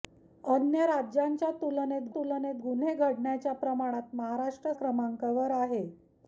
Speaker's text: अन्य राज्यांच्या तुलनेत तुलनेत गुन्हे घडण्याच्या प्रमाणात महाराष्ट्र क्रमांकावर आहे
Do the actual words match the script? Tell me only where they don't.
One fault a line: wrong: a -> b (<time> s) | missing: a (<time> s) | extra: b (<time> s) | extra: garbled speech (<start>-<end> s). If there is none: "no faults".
no faults